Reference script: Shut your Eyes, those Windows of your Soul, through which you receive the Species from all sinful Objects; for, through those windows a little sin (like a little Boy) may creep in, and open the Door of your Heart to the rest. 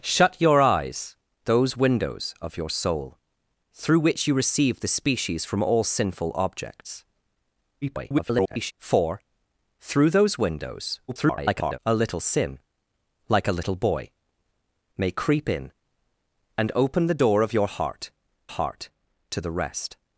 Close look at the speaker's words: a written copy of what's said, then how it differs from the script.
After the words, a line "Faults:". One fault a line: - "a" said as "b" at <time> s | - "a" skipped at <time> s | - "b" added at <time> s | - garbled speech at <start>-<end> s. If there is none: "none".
Shut your Eyes, those Windows of your Soul, through which you receive the Species from all sinful Objects; [garbled] for, through those windows [garbled] a little sin (like a little Boy) may creep in, and open the Door of your Heart Heart to the rest.
Faults:
- garbled speech at 7.8-8.7 s
- garbled speech at 11.1-11.8 s
- "Heart" added at 18.5 s